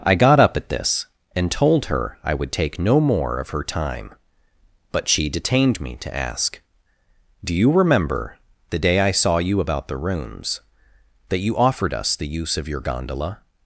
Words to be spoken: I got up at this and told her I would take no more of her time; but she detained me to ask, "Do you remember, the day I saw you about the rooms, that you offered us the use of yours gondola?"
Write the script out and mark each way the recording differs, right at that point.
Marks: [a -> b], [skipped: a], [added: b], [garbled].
I got up at this and told her I would take no more of her time; but she detained me to ask, "Do you remember, the day I saw you about the rooms, that you offered us the use of [yours -> your] gondola?"